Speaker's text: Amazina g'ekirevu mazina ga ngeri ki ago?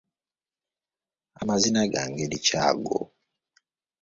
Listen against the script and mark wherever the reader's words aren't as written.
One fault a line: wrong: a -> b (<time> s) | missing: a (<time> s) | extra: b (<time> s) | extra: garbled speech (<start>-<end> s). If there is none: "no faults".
missing: g'ekirevu mazina (1.8 s)